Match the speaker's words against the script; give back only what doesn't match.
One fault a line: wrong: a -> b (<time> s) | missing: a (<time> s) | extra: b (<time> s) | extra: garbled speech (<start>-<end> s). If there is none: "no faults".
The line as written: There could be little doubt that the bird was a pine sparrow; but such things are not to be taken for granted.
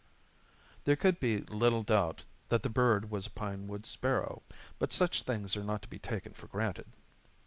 extra: wood (3.7 s)